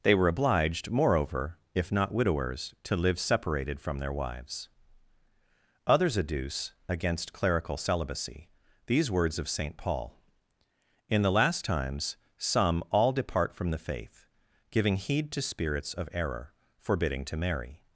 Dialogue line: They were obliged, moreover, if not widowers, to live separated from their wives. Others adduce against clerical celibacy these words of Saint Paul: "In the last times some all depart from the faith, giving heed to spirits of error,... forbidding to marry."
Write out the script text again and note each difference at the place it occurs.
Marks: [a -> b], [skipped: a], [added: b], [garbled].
They were obliged, moreover, if not widowers, to live separated from their wives. Others adduce against clerical celibacy these words of Saint Paul: "In the last times some all depart from the faith, giving heed to spirits of error,... forbidding to marry."